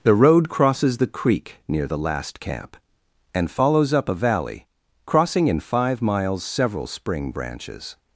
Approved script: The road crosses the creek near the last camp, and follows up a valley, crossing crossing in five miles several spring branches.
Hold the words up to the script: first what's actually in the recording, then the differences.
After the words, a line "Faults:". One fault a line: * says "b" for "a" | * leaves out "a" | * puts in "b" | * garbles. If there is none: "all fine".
The road crosses the creek near the last camp, and follows up a valley, crossing in five miles several spring branches.
Faults:
* leaves out "crossing"